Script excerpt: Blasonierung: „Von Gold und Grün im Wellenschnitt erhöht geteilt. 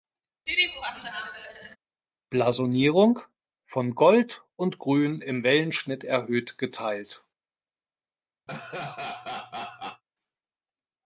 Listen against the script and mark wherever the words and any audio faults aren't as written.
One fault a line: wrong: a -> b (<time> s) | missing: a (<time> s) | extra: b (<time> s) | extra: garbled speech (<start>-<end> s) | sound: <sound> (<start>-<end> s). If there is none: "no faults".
sound: laugh (0.5-1.8 s)
sound: laugh (8.5-10.0 s)